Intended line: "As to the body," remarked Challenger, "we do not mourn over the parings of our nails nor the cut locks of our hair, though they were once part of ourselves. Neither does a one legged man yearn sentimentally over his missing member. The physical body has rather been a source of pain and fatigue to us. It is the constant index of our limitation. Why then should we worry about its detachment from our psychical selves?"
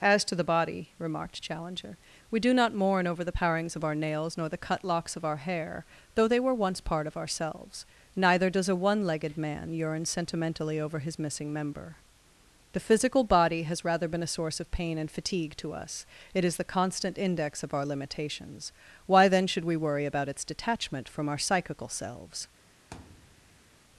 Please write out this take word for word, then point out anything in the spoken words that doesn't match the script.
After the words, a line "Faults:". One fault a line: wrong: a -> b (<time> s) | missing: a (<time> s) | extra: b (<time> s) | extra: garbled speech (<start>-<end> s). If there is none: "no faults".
"As to the body," remarked Challenger, "we do not mourn over the parings of our nails nor the cut locks of our hair, though they were once part of ourselves. Neither does a one legged man yearn sentimentally over his missing member. The physical body has rather been a source of pain and fatigue to us. It is the constant index of our limitations. Why then should we worry about its detachment from our psychical selves?"
Faults:
wrong: limitation -> limitations (17.8 s)